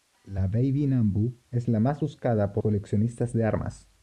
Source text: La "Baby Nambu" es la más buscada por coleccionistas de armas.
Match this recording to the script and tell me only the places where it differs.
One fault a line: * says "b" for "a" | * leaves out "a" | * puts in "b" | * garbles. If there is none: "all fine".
all fine